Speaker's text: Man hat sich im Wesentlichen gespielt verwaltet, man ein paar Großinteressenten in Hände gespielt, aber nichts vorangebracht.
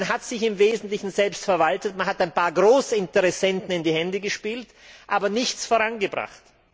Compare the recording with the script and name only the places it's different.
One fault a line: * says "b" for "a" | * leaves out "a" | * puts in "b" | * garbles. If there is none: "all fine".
* says "selbst" for "gespielt"
* puts in "hat"
* puts in "die"